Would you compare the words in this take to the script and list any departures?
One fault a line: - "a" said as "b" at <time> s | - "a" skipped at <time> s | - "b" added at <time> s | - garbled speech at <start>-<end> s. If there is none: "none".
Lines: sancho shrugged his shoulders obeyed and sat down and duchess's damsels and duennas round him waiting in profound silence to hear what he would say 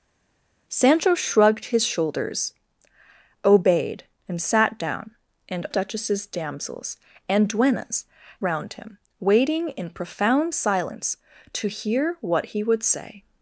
none